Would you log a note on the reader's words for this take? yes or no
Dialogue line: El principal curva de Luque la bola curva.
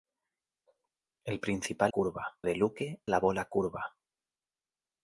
no